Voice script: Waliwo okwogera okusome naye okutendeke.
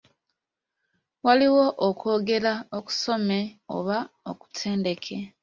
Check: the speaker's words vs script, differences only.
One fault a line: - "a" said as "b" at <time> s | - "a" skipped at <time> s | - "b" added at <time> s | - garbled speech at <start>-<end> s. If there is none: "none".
- "naye" said as "oba" at 3.8 s